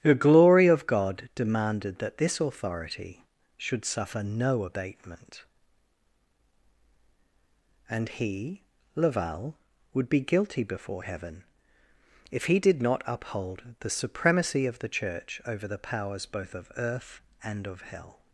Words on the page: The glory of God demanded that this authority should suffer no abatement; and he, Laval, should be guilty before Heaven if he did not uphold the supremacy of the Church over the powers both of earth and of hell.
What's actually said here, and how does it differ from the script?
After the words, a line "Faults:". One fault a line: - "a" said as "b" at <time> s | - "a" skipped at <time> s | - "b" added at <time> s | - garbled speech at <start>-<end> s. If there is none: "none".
The glory of God demanded that this authority should suffer no abatement; and he, Laval, would be guilty before Heaven if he did not uphold the supremacy of the Church over the powers both of earth and of hell.
Faults:
- "should" said as "would" at 9.9 s